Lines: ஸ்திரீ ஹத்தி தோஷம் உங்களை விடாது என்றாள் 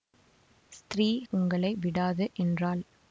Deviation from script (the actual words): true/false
true